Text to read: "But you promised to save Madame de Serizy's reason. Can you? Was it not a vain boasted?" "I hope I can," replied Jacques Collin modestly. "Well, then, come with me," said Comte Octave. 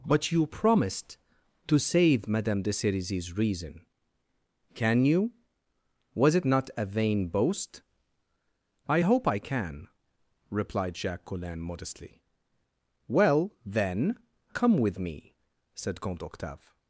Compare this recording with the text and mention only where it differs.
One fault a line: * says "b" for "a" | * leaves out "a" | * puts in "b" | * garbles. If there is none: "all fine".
* says "boast" for "boasted"